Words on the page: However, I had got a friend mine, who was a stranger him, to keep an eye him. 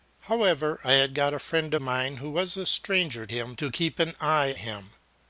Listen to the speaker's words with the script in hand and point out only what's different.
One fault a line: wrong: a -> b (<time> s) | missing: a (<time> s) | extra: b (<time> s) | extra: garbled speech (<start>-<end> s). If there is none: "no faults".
no faults